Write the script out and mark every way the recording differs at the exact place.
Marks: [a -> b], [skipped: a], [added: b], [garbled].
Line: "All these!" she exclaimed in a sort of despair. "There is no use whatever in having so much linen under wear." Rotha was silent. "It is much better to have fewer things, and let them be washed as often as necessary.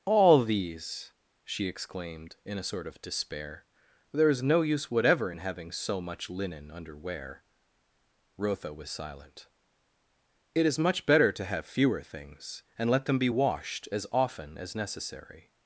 "All these!" she exclaimed in a sort of despair. "There is no use whatever in having so much linen under wear." Rotha was silent. "It is much better to have fewer things, and let them be washed as often as necessary.